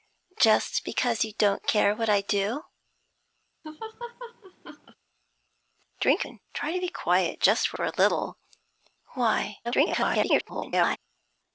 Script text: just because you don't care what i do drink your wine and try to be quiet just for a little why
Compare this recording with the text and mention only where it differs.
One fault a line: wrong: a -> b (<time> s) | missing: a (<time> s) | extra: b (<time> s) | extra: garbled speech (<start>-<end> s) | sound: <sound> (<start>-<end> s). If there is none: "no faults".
sound: laugh (3.6-5.0 s)
missing: your wine (6.3 s)
extra: for (7.7 s)
extra: garbled speech (9.6-11.0 s)